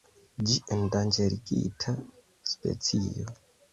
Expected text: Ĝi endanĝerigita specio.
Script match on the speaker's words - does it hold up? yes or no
yes